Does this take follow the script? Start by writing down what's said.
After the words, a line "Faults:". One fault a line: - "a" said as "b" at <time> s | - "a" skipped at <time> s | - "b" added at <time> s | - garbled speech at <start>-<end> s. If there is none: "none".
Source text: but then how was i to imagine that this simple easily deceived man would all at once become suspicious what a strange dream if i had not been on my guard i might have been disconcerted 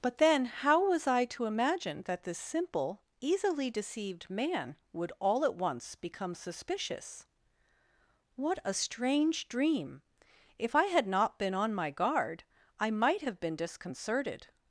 but then how was i to imagine that this simple easily deceived man would all at once become suspicious what a strange dream if i had not been on my guard i might have been disconcerted
Faults:
none